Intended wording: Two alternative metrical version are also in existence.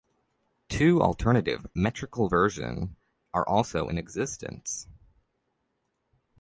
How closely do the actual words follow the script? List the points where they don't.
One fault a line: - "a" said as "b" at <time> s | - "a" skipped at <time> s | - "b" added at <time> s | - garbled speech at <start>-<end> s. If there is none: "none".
none